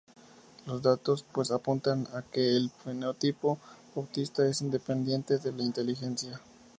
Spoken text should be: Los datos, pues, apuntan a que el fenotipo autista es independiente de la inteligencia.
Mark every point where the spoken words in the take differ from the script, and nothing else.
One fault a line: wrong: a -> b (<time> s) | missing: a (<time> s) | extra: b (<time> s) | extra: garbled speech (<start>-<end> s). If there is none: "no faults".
no faults